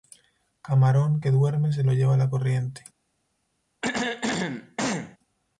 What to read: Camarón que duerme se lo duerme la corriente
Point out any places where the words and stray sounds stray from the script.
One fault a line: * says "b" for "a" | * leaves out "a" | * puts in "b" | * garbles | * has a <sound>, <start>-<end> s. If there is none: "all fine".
* says "lleva" for "duerme"
* has a throat clearing, 3.8-5.2 s